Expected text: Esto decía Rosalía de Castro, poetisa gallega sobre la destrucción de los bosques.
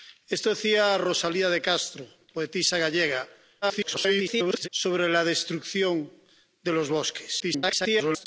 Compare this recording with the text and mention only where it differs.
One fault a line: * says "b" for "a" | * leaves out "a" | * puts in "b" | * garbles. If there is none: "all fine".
* garbles
* garbles